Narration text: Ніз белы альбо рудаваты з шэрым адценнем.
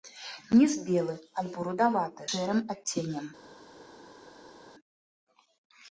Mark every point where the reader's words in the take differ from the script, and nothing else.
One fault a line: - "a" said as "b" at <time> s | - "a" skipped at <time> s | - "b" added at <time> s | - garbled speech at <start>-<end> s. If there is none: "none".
- "з" skipped at 2.2 s